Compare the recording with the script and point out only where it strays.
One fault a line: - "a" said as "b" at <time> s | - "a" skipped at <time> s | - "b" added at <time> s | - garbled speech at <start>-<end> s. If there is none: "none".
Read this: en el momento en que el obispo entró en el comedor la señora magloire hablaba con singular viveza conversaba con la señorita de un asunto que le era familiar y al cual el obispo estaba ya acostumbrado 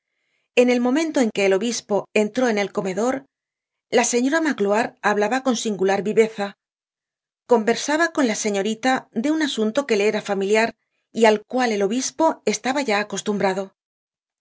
none